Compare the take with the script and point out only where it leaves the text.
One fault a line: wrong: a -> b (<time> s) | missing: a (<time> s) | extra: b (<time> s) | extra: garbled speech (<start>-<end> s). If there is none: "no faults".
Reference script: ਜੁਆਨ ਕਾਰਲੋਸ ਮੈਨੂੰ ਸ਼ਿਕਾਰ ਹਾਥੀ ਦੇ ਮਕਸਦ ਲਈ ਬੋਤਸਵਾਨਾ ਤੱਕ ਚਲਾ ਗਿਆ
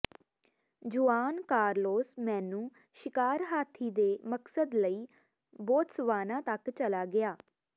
no faults